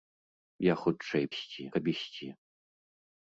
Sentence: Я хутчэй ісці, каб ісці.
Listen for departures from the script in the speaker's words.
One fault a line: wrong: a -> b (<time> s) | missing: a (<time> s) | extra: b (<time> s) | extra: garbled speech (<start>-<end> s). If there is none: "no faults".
no faults